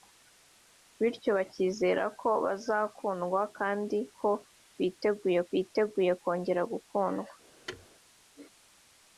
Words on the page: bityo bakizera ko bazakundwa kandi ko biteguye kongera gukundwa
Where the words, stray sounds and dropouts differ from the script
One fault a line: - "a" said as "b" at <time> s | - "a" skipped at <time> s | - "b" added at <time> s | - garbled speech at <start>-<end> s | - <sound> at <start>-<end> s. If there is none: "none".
- "biteguye" added at 5.5 s
- thud at 7.7-7.9 s